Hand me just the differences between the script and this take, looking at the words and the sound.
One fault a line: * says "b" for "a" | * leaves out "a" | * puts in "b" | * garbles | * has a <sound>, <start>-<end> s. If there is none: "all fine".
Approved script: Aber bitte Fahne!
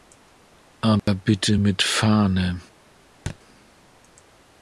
* has a dropout, 1.0-1.1 s
* puts in "mit"
* has a thud, 3.3-3.4 s